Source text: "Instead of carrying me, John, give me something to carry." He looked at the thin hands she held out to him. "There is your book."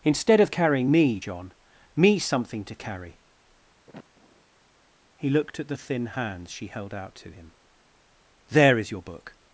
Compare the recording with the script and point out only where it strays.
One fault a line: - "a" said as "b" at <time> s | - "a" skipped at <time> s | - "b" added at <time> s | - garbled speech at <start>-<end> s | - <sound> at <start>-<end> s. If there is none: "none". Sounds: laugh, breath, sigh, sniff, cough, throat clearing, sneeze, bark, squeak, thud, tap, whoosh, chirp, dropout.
- "give" skipped at 1.5 s
- sniff at 3.9-4.4 s